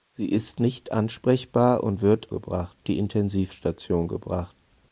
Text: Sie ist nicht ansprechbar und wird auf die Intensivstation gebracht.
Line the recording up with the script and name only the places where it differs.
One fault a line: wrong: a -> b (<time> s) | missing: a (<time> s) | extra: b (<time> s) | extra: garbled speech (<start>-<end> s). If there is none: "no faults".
wrong: auf -> gebracht (2.3 s)